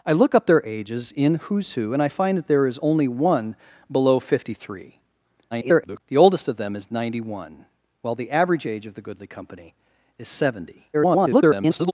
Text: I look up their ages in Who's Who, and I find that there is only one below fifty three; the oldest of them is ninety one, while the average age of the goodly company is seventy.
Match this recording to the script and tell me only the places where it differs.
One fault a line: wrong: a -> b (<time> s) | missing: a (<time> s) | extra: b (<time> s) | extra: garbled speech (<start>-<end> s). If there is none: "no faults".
extra: garbled speech (5.5-6.0 s)
extra: garbled speech (10.9-11.9 s)